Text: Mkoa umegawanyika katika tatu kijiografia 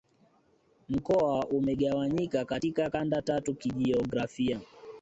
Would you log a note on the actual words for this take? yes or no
yes